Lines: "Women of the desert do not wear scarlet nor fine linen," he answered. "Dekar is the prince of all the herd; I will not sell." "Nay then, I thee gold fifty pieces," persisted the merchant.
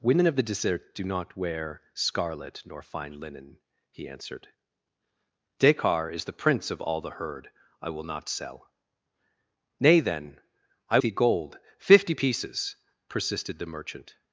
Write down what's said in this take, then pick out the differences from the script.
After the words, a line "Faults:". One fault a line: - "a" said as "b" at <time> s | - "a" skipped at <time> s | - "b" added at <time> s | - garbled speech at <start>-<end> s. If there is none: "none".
"Women of the desert do not wear scarlet nor fine linen," he answered. "Dekar is the prince of all the herd; I will not sell." "Nay then, I thee gold fifty pieces," persisted the merchant.
Faults:
none